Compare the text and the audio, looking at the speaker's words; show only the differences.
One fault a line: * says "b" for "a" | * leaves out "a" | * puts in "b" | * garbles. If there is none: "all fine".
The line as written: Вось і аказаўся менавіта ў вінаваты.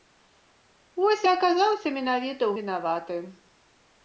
all fine